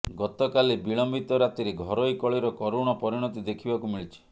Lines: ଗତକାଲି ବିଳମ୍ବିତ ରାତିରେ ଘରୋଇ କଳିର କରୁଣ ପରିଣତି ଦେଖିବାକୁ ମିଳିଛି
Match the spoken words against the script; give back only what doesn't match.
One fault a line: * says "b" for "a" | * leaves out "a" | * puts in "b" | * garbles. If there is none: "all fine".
all fine